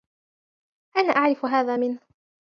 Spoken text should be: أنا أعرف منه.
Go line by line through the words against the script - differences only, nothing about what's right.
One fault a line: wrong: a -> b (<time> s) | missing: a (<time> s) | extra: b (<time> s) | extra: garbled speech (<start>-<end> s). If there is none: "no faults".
extra: هذا (1.4 s)